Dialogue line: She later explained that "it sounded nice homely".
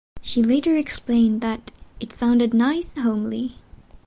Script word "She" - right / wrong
right